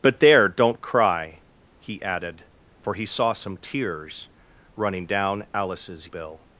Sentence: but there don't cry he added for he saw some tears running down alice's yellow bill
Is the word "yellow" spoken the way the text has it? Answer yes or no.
no